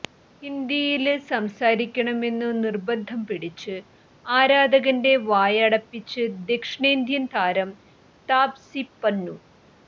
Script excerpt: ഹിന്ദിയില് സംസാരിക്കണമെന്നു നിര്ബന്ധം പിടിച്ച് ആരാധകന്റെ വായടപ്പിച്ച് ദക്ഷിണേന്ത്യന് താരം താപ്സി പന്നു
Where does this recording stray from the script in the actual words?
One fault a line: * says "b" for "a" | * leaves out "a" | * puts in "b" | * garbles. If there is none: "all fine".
all fine